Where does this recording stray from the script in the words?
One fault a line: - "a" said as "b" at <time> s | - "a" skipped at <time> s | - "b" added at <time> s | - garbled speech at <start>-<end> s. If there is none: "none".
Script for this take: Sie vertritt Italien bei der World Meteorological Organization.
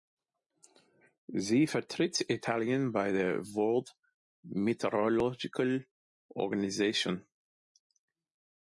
none